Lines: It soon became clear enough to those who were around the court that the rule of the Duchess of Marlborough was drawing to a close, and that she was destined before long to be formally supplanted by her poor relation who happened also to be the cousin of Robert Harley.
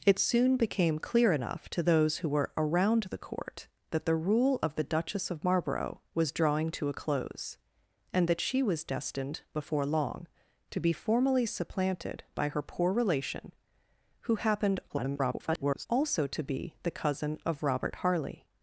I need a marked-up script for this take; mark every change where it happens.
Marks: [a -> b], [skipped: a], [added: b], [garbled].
It soon became clear enough to those who were around the court that the rule of the Duchess of Marlborough was drawing to a close, and that she was destined before long to be formally supplanted by her poor relation who happened [garbled] also to be the cousin of Robert Harley.